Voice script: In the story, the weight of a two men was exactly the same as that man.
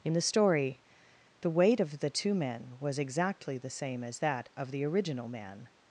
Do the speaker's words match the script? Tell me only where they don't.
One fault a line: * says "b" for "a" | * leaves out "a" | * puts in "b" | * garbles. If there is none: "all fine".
* says "the" for "a"
* puts in "of the original"